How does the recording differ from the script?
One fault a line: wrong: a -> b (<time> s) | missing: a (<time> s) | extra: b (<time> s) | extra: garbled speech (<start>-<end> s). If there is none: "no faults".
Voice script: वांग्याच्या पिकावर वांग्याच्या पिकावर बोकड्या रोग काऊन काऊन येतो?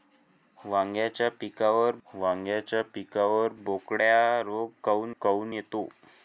no faults